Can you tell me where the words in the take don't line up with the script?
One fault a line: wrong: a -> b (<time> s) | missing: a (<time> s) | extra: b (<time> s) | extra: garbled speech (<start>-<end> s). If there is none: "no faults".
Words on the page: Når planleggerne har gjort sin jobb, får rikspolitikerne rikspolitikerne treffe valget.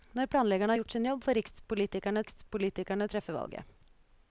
no faults